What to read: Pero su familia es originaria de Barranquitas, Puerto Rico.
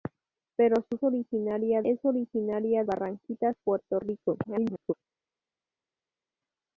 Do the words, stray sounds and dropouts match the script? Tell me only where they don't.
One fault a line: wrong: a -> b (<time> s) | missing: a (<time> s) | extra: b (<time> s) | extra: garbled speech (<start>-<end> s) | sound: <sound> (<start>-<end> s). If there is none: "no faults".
wrong: familia -> originaria (1.0 s)
missing: de (2.8 s)
extra: garbled speech (4.4-4.9 s)